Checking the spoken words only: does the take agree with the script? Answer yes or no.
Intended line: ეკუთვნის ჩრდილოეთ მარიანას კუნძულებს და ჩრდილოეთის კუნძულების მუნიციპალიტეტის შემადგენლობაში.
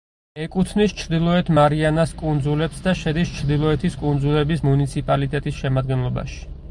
no